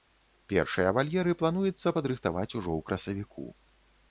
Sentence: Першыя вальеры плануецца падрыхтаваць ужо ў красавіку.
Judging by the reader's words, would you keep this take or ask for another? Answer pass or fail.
pass